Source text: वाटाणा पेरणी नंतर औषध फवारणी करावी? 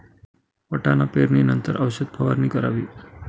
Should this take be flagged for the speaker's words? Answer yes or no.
no